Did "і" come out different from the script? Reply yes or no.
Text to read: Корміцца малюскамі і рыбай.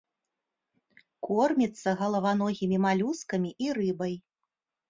no